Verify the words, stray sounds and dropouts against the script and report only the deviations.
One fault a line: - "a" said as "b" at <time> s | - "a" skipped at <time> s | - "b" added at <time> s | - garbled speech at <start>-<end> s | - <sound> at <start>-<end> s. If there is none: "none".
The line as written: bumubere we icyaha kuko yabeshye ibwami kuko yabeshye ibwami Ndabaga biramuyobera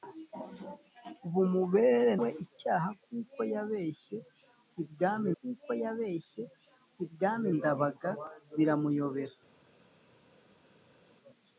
none